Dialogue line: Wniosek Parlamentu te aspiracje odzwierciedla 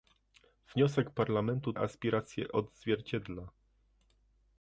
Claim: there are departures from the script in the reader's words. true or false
true